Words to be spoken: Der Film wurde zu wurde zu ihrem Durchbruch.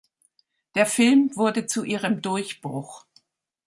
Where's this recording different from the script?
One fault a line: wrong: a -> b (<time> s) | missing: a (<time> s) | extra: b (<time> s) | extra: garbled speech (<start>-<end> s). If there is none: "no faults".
missing: wurde zu (1.8 s)